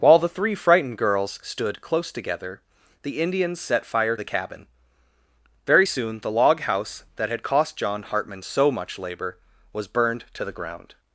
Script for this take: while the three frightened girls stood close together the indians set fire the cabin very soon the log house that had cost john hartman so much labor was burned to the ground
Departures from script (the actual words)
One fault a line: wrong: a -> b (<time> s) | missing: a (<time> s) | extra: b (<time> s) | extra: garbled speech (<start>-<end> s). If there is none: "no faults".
no faults